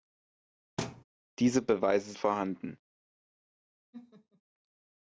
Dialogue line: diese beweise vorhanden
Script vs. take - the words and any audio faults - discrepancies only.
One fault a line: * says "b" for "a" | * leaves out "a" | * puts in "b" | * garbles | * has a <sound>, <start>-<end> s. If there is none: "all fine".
* has a thud, 0.8-1.0 s
* has a laugh, 3.9-4.4 s